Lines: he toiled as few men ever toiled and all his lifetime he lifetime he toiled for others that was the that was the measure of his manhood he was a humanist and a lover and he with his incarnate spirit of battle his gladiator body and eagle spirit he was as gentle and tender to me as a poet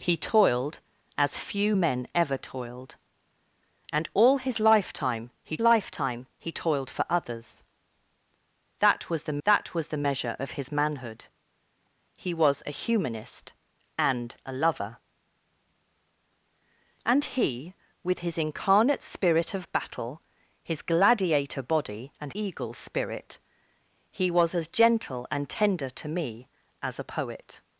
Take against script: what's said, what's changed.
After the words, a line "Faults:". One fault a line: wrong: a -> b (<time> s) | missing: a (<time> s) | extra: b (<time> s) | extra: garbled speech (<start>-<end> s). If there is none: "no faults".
he toiled as few men ever toiled and all his lifetime he lifetime he toiled for others that was the that was the measure of his manhood he was a humanist and a lover and he with his incarnate spirit of battle his gladiator body and eagle spirit he was as gentle and tender to me as a poet
Faults:
no faults